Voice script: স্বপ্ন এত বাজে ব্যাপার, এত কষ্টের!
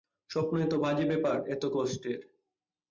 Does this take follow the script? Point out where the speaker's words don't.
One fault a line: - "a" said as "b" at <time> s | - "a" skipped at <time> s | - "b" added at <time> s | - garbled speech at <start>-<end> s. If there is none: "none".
none